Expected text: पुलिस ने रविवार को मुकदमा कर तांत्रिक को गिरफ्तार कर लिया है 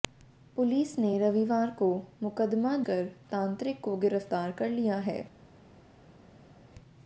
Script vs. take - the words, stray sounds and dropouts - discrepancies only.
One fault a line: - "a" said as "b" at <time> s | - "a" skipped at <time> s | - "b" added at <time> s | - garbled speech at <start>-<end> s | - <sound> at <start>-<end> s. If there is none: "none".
none